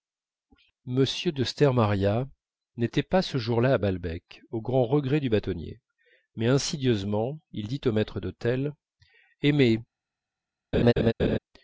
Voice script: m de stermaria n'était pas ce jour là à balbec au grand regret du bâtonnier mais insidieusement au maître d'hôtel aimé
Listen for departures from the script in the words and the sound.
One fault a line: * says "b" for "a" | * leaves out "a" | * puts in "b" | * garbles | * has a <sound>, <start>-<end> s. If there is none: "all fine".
* puts in "il dit"
* has a laugh, 10.7-11.4 s